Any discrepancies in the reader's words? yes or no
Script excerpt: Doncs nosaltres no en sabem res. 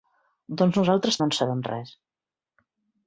no